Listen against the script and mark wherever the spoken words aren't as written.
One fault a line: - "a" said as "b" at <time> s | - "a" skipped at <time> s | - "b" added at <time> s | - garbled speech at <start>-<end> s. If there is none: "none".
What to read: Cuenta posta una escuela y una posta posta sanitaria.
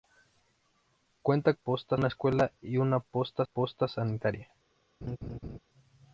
none